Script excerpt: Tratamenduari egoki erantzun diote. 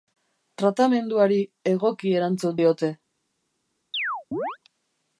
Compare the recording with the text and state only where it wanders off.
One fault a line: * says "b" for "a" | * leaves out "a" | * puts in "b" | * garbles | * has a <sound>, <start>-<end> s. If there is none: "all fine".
* has a chirp, 3.9-4.6 s